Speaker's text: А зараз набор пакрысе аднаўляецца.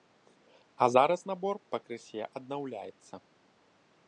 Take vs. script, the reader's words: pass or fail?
pass